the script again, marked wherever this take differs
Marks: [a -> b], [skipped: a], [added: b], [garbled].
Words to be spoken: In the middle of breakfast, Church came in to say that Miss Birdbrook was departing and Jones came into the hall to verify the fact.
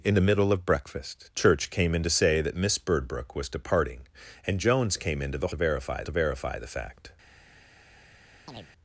In the middle of breakfast, Church came in to say that Miss Birdbrook was departing and Jones came into the [hall -> verify] to verify the fact.